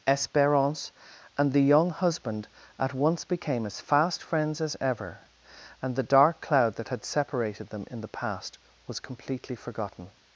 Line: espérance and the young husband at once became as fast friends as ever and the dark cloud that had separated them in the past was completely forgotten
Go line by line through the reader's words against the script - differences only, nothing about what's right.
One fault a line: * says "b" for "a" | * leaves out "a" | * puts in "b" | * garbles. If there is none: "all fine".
all fine